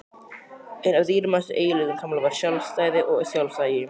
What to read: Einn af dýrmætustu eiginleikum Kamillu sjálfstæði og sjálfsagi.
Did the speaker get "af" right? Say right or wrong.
right